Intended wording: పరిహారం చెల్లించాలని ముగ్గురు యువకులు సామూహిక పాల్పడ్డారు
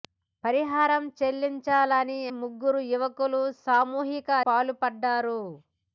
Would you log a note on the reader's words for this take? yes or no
no